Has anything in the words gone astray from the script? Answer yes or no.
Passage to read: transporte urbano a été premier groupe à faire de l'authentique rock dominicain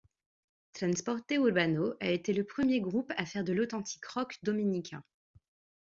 yes